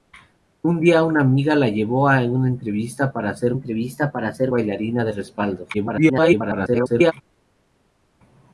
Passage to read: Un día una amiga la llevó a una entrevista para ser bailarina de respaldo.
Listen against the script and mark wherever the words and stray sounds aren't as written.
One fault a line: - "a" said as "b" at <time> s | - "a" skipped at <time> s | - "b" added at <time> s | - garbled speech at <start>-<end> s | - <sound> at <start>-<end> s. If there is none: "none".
- "entrevista para ser" added at 3.5 s
- garbled speech at 5.7-7.1 s